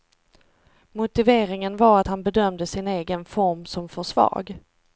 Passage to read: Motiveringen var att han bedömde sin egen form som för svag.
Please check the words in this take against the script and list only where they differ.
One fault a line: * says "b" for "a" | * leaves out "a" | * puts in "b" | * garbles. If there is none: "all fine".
all fine